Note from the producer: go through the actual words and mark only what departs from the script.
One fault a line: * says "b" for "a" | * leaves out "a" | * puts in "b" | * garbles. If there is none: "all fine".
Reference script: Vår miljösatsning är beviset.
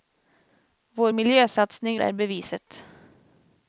all fine